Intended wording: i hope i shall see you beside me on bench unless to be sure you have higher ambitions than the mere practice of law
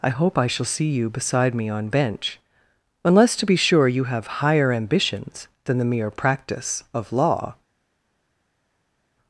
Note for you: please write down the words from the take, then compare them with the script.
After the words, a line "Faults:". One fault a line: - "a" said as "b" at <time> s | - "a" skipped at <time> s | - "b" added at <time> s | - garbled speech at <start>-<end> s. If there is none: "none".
i hope i shall see you beside me on bench unless to be sure you have higher ambitions than the mere practice of law
Faults:
none